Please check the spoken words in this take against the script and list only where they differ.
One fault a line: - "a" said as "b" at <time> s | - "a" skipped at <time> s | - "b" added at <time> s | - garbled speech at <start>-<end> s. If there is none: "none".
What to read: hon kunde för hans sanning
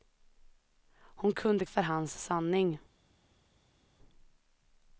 none